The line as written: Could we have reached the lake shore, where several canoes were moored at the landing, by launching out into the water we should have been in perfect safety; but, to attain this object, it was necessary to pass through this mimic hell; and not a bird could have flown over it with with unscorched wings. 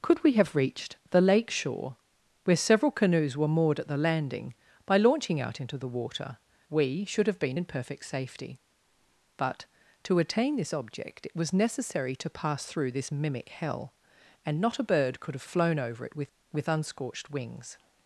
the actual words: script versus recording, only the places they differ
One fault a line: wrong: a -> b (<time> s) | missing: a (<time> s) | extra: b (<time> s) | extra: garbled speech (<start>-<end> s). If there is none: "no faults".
no faults